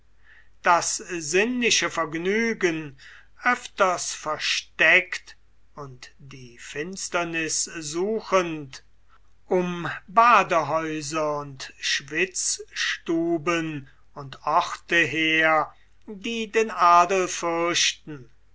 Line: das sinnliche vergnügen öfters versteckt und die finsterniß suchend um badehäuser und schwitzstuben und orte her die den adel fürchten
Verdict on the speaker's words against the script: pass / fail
pass